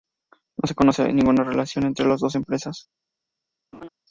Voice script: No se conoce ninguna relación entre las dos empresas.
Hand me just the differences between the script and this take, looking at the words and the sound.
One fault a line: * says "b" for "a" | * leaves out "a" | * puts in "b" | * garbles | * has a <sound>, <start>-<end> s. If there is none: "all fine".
* has a laugh, 3.7-3.9 s